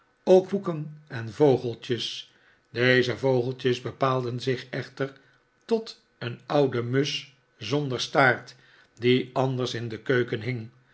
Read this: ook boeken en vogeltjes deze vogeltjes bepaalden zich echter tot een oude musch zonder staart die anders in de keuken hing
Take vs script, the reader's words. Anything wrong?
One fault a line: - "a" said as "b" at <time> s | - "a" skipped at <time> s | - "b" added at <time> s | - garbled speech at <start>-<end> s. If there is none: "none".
none